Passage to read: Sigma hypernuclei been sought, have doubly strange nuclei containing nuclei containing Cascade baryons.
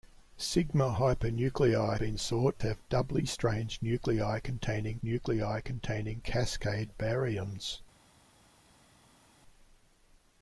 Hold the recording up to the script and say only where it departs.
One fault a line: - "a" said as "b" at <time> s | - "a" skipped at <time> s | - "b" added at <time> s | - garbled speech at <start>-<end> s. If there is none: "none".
none